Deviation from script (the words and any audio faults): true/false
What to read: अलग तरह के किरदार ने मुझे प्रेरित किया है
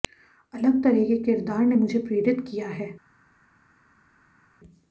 false